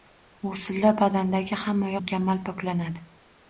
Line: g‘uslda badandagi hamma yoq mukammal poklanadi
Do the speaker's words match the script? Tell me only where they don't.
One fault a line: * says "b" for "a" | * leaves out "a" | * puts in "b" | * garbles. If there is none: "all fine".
* leaves out "yoq"